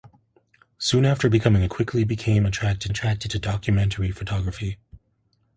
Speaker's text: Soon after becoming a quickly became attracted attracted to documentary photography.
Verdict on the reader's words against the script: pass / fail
pass